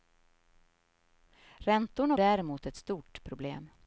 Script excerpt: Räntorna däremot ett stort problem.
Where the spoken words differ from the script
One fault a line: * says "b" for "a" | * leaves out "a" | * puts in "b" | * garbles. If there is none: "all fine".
all fine